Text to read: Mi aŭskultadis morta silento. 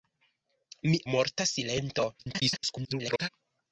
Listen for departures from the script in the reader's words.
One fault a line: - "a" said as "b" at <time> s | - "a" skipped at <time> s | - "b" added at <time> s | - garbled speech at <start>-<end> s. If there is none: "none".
- "aŭskultadis" skipped at 0.9 s
- garbled speech at 2.2-3.3 s